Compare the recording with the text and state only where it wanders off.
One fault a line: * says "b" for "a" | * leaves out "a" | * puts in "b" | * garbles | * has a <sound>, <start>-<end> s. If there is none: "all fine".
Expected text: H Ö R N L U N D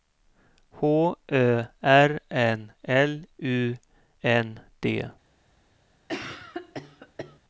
* has a cough, 6.1-7.4 s